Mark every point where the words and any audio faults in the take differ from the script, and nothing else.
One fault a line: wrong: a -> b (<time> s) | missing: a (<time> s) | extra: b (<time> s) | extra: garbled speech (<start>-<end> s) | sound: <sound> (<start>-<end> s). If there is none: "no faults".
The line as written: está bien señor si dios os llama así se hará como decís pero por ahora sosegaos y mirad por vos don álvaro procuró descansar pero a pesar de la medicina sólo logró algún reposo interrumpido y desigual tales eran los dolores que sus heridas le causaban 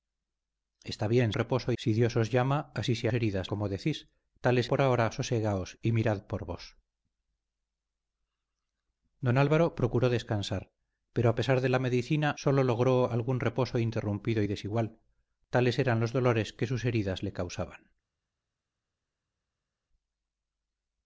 wrong: señor -> reposo (1.3 s)
wrong: hará -> heridas (3.1 s)
wrong: pero -> tales (4.4 s)